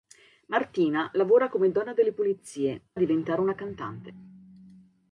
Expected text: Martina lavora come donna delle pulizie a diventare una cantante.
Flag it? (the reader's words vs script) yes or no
no